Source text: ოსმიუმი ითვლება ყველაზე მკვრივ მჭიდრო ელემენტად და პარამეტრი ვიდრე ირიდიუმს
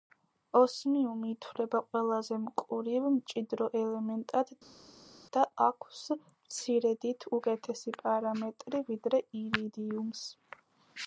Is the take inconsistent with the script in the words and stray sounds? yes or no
yes